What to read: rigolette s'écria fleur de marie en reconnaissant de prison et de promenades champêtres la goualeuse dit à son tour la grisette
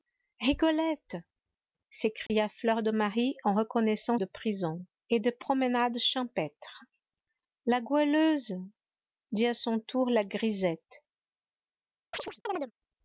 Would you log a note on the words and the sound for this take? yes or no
yes